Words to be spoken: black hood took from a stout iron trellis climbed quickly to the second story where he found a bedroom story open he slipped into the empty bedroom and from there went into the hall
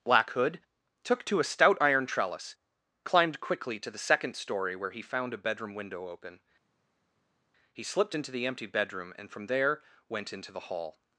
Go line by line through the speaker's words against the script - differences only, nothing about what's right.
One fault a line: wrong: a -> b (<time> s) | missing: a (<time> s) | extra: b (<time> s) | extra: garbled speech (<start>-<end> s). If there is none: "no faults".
wrong: from -> to (1.2 s)
wrong: story -> window (5.8 s)